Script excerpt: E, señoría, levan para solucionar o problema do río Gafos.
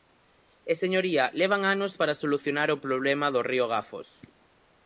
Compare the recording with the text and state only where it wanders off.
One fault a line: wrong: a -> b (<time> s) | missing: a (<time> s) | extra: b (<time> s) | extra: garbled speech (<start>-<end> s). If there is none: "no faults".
extra: anos (1.8 s)